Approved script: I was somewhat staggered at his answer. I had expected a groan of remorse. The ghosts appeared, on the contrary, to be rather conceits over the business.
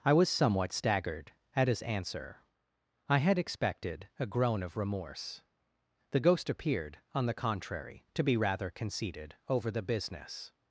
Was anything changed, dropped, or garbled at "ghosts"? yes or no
yes